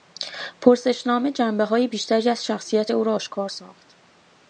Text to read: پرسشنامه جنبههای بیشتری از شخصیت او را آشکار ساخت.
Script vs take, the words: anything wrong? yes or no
no